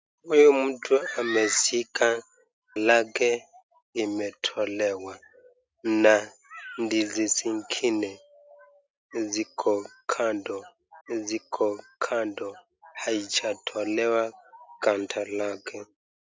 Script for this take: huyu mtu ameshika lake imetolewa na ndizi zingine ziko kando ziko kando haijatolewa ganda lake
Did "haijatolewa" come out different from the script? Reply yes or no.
no